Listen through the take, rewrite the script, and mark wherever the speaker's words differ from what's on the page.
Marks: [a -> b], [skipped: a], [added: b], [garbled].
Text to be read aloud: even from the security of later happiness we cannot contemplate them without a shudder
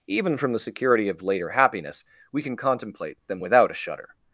even from the security of later happiness we [cannot -> can] contemplate them without a shudder